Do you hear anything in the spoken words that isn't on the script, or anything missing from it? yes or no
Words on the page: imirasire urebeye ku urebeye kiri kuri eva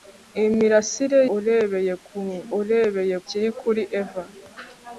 no